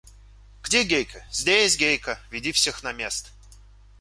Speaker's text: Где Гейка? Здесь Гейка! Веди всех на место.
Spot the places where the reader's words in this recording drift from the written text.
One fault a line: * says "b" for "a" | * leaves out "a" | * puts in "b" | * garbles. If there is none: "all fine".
all fine